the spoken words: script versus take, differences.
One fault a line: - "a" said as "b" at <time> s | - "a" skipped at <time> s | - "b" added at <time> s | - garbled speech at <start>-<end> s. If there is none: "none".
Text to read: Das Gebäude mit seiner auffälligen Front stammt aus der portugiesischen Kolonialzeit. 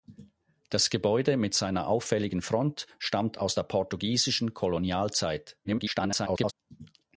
- garbled speech at 5.6-6.5 s